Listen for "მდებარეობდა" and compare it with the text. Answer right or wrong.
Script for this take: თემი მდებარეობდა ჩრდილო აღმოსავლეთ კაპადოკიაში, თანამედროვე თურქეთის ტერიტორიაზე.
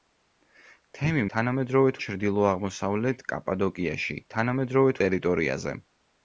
wrong